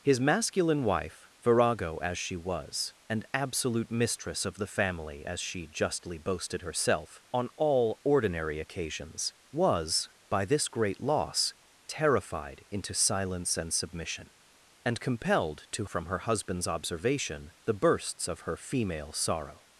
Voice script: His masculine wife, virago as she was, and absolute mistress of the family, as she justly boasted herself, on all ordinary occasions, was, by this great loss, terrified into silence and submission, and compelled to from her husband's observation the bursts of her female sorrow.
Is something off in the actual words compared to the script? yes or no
no